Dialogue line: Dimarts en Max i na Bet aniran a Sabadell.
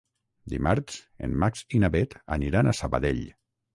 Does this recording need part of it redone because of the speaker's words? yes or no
no